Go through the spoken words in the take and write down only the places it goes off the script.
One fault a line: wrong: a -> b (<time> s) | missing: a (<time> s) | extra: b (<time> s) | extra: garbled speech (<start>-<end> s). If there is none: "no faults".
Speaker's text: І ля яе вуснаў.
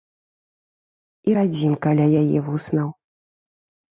extra: радзімка (1.4 s)